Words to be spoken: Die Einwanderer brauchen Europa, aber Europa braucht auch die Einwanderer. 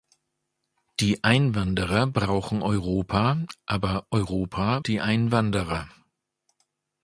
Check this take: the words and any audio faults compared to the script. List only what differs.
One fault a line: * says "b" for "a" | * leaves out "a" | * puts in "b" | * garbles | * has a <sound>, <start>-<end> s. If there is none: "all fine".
* leaves out "braucht auch"